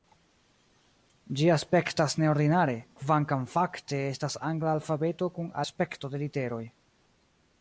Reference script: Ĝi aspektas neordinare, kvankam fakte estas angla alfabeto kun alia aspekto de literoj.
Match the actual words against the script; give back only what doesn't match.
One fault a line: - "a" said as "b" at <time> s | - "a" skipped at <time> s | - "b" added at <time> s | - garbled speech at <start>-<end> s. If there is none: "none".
- "alia" skipped at 5.5 s